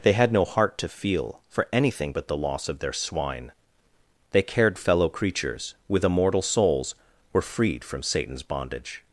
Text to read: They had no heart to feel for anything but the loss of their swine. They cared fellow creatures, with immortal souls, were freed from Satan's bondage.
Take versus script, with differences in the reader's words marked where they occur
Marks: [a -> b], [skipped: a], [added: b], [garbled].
They had no heart to feel for anything but the loss of their swine. They cared fellow creatures, with immortal souls, were freed from Satan's bondage.